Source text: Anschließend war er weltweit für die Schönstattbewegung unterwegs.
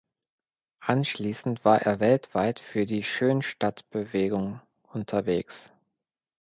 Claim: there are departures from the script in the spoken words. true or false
false